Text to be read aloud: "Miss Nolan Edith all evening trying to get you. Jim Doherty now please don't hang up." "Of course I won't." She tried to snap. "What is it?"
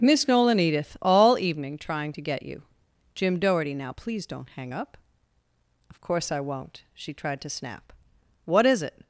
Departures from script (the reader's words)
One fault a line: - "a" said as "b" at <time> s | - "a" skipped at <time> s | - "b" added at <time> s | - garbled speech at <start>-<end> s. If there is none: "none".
none